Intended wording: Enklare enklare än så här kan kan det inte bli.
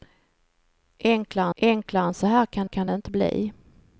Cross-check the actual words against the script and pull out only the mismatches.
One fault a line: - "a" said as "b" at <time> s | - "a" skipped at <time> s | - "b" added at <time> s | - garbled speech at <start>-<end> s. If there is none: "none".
none